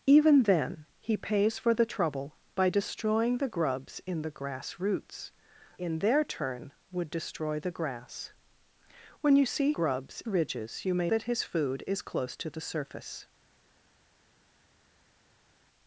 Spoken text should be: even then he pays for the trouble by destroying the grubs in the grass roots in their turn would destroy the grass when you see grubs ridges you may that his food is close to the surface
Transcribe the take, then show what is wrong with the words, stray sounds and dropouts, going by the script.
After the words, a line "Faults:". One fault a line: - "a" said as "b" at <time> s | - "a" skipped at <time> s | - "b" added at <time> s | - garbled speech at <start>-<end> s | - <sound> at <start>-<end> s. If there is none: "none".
even then he pays for the trouble by destroying the grubs in the grass roots in their turn would destroy the grass when you see grubs ridges you may that his food is close to the surface
Faults:
none